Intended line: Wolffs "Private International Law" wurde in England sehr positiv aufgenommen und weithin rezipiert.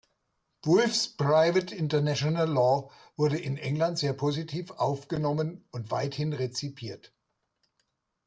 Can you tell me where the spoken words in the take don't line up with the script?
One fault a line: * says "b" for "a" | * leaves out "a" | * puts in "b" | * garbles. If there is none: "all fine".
all fine